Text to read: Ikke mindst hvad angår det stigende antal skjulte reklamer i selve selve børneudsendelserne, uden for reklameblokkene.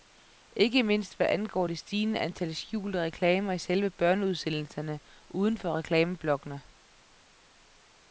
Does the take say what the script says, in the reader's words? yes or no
no